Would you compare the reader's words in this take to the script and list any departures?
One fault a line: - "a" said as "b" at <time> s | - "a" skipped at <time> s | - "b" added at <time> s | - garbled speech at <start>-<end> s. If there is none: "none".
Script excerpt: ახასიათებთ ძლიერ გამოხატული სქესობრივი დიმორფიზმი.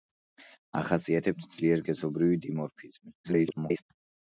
- "გამოხატული" skipped at 1.9 s
- garbled speech at 3.2-3.8 s